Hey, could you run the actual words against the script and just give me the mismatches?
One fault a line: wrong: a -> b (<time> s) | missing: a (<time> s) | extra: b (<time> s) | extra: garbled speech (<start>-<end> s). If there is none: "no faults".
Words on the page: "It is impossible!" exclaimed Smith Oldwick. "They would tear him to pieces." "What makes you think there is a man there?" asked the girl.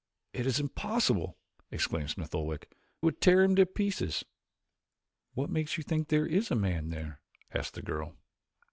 missing: They (2.7 s)